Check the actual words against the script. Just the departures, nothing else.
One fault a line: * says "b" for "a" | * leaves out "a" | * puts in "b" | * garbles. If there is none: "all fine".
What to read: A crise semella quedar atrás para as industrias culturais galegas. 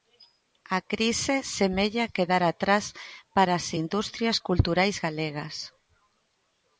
all fine